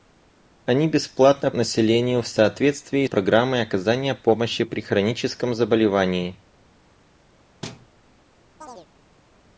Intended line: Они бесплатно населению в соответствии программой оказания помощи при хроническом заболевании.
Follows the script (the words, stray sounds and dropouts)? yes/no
no